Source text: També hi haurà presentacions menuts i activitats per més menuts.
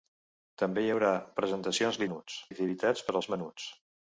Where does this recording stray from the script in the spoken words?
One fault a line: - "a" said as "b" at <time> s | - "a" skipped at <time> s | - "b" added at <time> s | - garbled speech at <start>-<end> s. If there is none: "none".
none